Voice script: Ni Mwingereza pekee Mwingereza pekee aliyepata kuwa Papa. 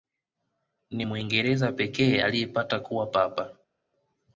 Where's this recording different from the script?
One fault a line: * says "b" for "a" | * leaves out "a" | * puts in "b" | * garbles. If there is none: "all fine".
* leaves out "Mwingereza pekee"